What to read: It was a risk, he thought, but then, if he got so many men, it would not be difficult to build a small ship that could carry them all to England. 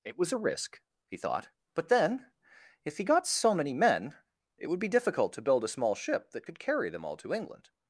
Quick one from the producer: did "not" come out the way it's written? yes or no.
no